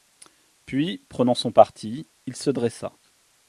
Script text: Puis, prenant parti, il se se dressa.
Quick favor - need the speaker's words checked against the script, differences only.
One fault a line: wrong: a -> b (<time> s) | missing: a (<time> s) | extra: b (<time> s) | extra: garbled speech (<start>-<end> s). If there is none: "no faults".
extra: son (1.4 s)
missing: se (2.5 s)